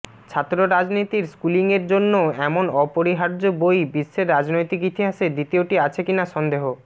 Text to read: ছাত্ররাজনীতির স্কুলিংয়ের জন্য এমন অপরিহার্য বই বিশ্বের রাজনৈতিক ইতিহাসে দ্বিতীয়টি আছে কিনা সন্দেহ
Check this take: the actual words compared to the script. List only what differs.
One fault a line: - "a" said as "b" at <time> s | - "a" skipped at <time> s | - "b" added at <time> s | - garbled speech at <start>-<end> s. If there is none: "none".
none